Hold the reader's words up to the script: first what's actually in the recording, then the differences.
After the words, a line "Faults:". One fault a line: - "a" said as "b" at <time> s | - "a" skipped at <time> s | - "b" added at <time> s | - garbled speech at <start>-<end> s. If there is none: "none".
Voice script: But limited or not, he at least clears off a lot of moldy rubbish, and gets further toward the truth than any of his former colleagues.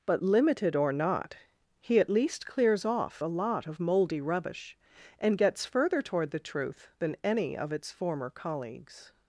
But limited or not, he at least clears off a lot of moldy rubbish, and gets further toward the truth than any of its former colleagues.
Faults:
- "his" said as "its" at 7.7 s